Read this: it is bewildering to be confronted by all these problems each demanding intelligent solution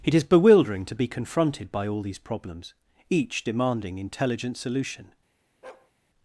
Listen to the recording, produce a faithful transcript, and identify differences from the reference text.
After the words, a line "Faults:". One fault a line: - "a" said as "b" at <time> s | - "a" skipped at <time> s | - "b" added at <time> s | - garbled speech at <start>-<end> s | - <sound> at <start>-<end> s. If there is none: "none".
it is bewildering to be confronted by all these problems each demanding intelligent solution
Faults:
- bark at 5.6-5.9 s